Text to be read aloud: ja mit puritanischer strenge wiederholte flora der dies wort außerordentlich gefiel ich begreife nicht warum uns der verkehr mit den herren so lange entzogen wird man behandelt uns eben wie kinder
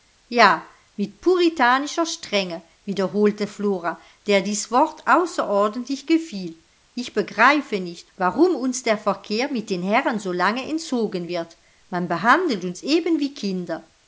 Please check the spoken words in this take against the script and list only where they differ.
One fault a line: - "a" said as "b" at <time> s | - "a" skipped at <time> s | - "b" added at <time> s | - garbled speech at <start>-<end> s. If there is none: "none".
none